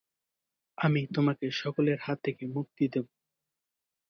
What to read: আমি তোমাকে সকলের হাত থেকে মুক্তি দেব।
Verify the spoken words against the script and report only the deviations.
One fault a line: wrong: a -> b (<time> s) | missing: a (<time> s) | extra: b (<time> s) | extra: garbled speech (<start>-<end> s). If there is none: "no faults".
no faults